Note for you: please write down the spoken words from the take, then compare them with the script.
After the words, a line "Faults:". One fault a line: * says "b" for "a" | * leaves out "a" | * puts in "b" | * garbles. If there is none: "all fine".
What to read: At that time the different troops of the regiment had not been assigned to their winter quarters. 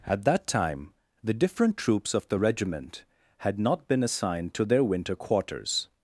At that time the different troops of the regiment had not been assigned to their winter quarters.
Faults:
all fine